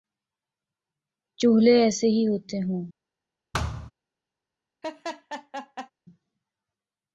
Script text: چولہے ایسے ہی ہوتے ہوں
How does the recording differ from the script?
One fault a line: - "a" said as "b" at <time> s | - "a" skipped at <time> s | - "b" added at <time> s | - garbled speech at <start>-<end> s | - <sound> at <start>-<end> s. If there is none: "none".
- thud at 3.5-3.9 s
- laugh at 4.8-5.9 s